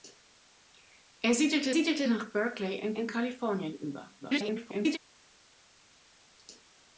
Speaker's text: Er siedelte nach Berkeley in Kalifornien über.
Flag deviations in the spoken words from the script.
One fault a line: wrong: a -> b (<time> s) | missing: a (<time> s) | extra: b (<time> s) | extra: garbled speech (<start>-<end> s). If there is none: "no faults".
extra: siedelte (1.7 s)
extra: in (2.9 s)
extra: garbled speech (4.2-5.0 s)